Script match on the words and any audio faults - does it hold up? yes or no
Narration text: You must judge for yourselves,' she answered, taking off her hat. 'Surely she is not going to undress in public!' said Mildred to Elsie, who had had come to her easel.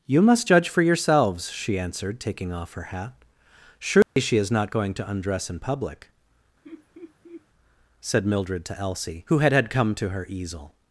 no